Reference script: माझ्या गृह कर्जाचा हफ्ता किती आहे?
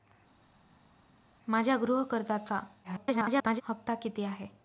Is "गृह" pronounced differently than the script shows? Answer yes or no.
no